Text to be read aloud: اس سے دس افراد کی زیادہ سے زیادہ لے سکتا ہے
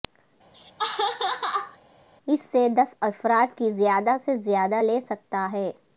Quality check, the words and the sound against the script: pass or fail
fail